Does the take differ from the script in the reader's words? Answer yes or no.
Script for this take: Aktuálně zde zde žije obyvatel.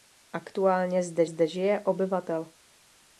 no